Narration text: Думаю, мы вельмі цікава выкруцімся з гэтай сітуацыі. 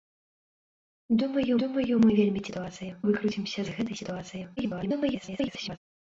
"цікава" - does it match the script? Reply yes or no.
no